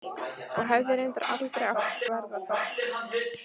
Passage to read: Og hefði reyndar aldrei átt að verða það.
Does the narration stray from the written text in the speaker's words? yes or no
yes